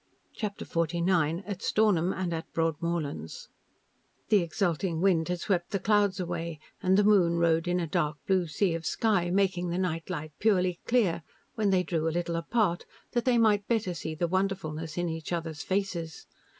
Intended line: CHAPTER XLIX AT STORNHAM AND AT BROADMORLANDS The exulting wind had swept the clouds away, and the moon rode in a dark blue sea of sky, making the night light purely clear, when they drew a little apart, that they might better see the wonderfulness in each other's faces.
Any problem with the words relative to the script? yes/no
no